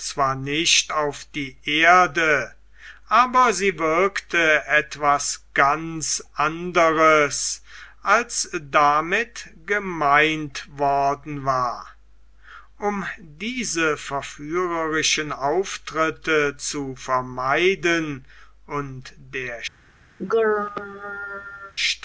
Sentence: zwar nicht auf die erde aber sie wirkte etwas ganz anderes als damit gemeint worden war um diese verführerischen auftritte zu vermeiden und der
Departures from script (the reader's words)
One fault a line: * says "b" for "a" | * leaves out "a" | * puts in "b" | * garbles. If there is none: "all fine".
all fine